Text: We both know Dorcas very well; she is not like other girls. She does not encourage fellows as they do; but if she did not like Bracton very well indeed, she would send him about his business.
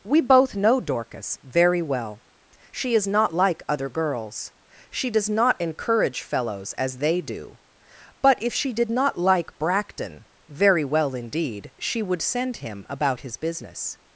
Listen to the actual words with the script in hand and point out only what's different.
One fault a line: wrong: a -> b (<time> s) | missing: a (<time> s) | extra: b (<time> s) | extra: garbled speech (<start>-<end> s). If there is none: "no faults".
no faults